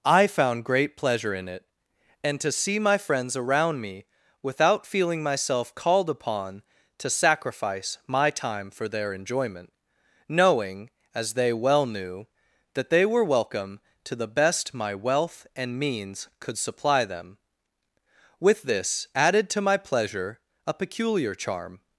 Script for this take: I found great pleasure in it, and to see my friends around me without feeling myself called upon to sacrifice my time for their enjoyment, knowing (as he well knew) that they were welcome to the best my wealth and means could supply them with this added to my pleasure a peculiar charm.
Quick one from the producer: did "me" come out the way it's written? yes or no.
yes